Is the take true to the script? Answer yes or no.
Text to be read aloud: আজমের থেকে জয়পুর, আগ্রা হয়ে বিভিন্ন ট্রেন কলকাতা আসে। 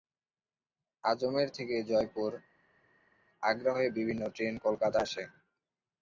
yes